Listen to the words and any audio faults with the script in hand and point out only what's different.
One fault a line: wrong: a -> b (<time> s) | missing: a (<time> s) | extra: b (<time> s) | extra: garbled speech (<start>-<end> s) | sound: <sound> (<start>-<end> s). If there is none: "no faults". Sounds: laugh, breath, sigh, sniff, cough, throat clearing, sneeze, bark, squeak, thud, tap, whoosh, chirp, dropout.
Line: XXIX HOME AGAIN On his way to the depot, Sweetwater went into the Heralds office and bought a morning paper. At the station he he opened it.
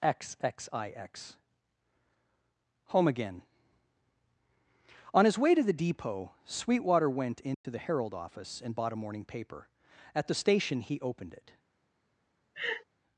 sound: dropout (7.5-7.6 s)
wrong: Heralds -> Herald (7.8 s)
missing: he (11.0 s)
sound: laugh (12.5-12.8 s)